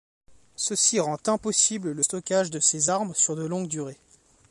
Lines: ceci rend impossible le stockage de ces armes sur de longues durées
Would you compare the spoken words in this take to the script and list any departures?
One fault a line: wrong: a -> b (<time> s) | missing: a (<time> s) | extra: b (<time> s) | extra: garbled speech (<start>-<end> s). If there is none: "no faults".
no faults